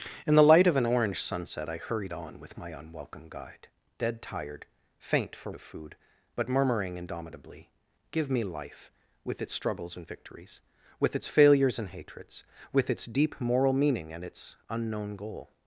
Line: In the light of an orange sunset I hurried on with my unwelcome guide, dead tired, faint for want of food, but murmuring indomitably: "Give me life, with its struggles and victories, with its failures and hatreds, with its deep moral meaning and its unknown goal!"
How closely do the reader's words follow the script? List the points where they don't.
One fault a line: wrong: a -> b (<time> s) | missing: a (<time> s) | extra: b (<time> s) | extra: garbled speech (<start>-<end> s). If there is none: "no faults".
missing: want (5.5 s)